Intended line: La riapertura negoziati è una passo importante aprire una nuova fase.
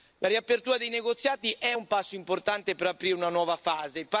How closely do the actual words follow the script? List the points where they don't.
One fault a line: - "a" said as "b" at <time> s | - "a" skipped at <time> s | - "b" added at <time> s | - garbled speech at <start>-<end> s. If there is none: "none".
- "dei" added at 0.8 s
- "una" said as "un" at 1.7 s
- "per" added at 2.7 s